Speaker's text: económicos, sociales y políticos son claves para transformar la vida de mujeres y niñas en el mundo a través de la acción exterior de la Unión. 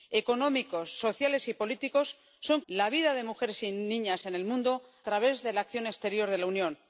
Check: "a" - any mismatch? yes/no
yes